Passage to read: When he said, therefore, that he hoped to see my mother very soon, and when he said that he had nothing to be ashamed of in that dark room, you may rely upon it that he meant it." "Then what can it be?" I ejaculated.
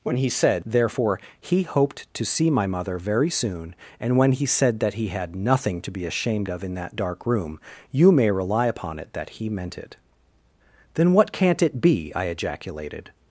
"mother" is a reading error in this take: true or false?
false